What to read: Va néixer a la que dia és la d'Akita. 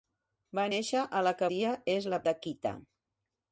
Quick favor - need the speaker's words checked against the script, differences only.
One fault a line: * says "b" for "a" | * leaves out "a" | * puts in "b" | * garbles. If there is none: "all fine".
all fine